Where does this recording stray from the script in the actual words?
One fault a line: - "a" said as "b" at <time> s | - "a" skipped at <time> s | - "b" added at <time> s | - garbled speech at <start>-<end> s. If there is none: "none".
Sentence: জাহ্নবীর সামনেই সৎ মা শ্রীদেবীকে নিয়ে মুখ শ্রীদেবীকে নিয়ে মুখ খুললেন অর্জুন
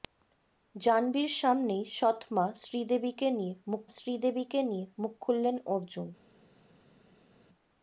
none